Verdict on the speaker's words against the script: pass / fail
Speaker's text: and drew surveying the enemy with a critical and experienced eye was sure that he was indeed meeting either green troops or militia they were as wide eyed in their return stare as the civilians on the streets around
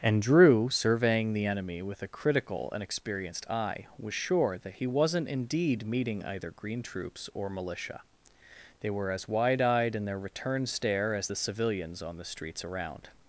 fail